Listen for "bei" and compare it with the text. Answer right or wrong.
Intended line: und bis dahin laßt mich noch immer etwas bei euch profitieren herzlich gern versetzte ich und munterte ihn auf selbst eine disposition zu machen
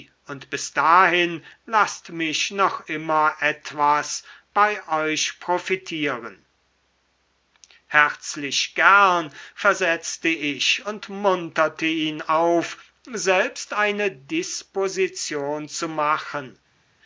right